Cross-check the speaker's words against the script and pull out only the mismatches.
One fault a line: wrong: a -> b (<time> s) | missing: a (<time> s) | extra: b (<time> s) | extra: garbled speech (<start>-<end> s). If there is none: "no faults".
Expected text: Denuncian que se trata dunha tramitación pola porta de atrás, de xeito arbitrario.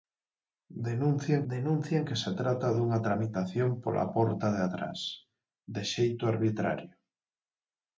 extra: denuncian (1.5 s)